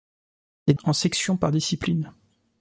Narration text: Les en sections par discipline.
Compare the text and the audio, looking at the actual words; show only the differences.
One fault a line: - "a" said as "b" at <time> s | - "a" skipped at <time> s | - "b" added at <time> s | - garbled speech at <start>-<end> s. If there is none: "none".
none